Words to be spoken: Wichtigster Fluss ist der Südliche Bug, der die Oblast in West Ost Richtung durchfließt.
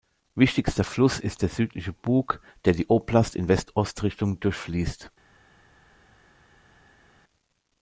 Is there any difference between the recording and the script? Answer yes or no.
no